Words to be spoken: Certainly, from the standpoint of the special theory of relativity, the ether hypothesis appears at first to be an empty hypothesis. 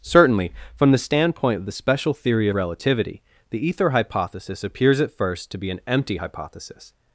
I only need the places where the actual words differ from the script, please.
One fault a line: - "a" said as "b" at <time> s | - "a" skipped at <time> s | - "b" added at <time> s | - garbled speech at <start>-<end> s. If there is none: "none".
- "of" skipped at 2.5 s